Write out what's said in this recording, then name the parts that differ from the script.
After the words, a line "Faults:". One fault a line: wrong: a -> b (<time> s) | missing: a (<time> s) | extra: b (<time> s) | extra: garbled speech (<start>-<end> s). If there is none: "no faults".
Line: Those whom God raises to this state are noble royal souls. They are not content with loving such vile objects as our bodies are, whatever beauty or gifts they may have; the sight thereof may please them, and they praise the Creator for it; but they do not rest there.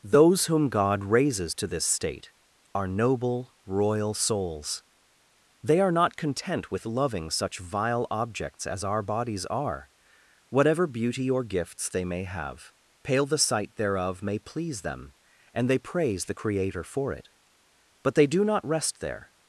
Those whom God raises to this state are noble royal souls. They are not content with loving such vile objects as our bodies are, whatever beauty or gifts they may have; pale the sight thereof may please them, and they praise the Creator for it; but they do not rest there.
Faults:
extra: pale (13.0 s)